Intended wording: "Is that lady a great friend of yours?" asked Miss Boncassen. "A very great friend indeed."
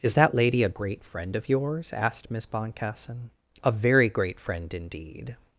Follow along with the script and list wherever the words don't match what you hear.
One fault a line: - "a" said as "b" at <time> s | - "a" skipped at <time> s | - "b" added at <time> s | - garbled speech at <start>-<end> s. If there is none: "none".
none